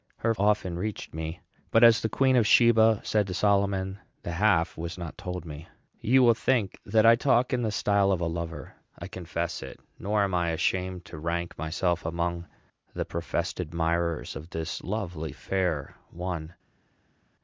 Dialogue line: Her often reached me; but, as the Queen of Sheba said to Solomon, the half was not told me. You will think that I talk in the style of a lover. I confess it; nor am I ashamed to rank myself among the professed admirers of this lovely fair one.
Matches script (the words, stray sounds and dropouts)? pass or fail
pass